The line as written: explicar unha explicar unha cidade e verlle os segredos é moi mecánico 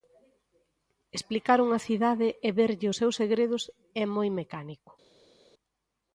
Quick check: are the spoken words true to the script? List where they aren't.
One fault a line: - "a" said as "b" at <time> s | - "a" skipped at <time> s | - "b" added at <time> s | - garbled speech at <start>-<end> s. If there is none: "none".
- "explicar unha" skipped at 1.8 s
- "seus" added at 3.0 s